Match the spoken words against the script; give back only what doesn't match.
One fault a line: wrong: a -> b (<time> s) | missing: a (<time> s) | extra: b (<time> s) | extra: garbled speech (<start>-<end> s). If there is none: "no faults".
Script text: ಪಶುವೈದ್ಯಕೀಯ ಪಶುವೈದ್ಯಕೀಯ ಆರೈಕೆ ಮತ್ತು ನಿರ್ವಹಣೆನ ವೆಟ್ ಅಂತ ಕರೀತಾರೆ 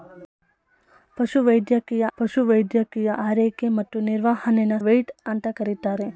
no faults